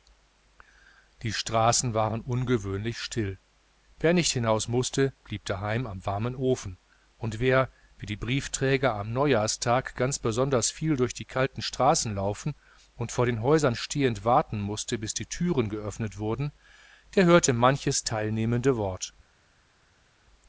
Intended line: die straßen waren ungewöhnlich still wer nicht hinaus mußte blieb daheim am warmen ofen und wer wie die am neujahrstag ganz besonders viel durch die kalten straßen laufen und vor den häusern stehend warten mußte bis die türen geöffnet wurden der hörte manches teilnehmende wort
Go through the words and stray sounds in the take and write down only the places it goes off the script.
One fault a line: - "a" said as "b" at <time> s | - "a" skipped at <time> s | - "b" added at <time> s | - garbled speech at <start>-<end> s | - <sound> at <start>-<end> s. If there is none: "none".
- "briefträger" added at 8.2 s